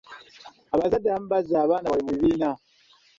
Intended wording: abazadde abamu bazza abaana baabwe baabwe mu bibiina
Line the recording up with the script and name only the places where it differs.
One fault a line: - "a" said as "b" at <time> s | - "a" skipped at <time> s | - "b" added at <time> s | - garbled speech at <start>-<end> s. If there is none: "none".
- "baabwe" skipped at 2.0 s